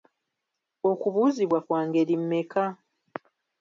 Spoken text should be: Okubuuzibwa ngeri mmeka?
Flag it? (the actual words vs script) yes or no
yes